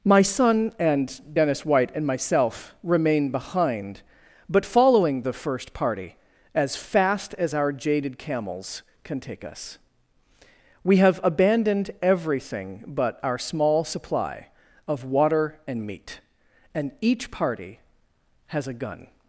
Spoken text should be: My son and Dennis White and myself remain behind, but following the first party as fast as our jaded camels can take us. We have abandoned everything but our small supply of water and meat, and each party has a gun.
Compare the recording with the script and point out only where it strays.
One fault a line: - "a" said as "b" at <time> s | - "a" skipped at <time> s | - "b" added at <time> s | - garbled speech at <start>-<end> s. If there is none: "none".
none